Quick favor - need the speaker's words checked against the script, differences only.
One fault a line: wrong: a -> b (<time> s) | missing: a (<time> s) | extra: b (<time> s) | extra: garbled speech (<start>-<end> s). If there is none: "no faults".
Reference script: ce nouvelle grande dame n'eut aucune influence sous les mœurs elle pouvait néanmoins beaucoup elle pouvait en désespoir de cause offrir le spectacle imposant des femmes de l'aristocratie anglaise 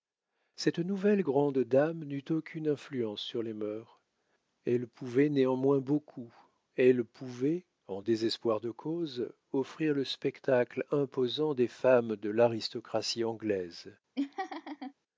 wrong: ce -> cette (0.6 s)
wrong: sous -> sur (3.2 s)